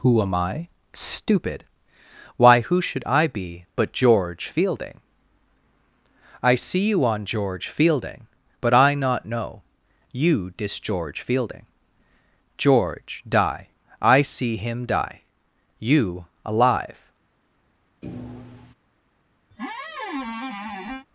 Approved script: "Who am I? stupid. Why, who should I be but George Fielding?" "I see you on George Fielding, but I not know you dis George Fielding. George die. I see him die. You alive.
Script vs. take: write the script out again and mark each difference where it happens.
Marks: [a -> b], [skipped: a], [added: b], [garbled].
"Who am I? stupid. Why, who should I be but George Fielding?" "I see you on George Fielding, but I not know you dis George Fielding. George die. I see him die. You alive.